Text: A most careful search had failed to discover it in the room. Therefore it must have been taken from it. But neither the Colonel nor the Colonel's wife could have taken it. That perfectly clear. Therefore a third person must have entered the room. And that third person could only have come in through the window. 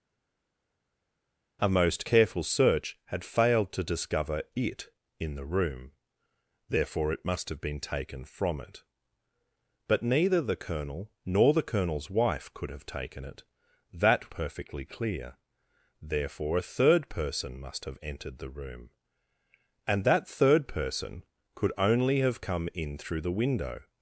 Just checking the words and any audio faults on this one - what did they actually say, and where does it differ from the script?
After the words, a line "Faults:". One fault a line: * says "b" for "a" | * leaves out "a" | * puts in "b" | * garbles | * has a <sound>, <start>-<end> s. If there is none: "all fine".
A most careful search had failed to discover it in the room. Therefore it must have been taken from it. But neither the Colonel nor the Colonel's wife could have taken it. That perfectly clear. Therefore a third person must have entered the room. And that third person could only have come in through the window.
Faults:
all fine